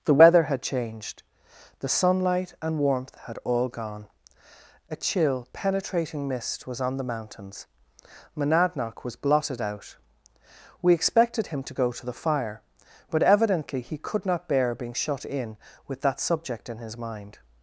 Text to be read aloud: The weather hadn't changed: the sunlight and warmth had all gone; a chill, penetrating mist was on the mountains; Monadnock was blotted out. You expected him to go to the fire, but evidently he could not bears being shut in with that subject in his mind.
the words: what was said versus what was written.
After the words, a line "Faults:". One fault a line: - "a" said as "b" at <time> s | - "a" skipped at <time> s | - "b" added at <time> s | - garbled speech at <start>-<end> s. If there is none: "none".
The weather had changed: the sunlight and warmth had all gone; a chill, penetrating mist was on the mountains; Monadnock was blotted out. We expected him to go to the fire, but evidently he could not bear being shut in with that subject in his mind.
Faults:
- "hadn't" said as "had" at 0.4 s
- "You" said as "We" at 10.8 s
- "bears" said as "bear" at 14.5 s